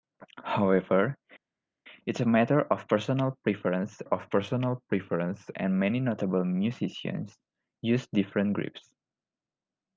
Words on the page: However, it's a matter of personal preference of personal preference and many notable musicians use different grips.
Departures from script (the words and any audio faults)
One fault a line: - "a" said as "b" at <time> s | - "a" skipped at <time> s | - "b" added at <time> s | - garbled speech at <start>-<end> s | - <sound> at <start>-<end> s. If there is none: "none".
none